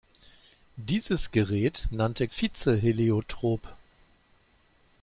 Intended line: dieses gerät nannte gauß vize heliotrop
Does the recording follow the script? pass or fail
fail